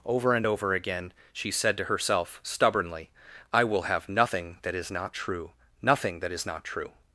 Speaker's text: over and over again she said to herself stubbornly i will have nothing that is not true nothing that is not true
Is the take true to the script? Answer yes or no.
yes